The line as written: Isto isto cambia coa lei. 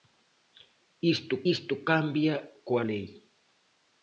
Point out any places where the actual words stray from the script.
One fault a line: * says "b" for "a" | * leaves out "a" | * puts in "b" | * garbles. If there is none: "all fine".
all fine